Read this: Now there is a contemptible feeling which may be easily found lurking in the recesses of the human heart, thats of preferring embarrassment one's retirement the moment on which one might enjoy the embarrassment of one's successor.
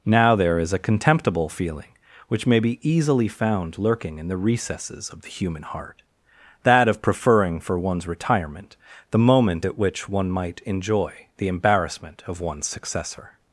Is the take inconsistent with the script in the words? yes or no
yes